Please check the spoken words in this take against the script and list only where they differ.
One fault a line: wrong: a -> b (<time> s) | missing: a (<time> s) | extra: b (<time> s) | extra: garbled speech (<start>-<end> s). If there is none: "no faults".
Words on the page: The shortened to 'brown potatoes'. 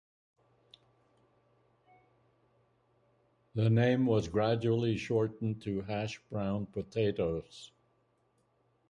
extra: name was gradually (3.7 s)
extra: hash (5.8 s)